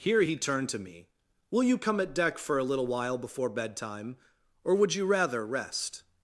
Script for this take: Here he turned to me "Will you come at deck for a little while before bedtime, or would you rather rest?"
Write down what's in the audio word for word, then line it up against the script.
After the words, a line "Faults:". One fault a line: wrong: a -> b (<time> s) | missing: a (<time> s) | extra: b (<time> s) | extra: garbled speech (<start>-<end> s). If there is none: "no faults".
Here he turned to me "Will you come at deck for a little while before bedtime, or would you rather rest?"
Faults:
no faults